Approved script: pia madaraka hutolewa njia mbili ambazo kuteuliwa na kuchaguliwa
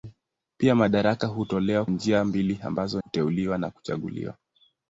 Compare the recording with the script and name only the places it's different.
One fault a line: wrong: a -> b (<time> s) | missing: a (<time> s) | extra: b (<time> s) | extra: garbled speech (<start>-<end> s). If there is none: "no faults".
no faults